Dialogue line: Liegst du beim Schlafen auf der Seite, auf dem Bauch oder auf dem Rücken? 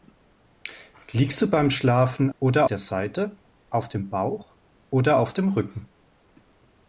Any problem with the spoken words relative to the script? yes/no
yes